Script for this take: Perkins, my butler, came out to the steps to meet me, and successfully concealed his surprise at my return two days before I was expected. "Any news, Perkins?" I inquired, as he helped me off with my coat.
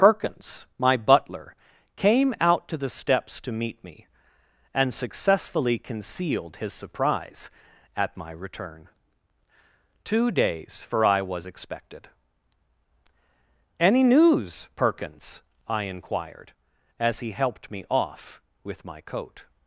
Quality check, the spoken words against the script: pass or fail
fail